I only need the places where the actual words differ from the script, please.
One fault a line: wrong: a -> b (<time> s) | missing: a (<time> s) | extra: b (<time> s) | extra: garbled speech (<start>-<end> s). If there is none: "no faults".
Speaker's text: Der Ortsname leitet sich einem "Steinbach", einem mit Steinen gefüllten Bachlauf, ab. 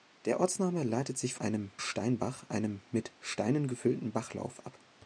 no faults